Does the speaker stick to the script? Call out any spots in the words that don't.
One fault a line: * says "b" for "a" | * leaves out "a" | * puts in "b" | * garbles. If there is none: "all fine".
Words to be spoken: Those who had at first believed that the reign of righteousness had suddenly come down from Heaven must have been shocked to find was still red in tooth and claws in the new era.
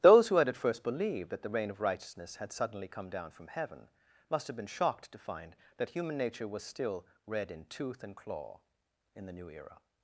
* puts in "that human nature"
* says "claw" for "claws"